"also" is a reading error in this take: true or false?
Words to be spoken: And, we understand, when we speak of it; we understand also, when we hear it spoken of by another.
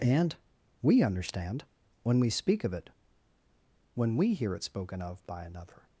true